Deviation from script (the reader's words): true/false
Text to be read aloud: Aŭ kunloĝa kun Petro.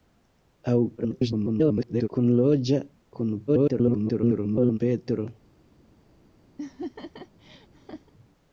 true